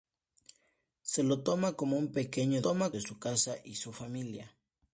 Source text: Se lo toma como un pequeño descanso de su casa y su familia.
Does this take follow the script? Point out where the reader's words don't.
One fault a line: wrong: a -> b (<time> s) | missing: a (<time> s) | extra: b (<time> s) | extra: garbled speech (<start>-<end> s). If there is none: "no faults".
wrong: descanso -> toma (2.6 s)